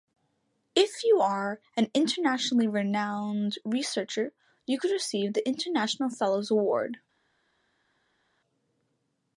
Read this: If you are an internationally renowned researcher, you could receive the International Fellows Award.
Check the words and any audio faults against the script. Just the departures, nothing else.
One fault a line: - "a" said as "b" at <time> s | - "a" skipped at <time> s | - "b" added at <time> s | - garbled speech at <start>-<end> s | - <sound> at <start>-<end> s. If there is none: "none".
none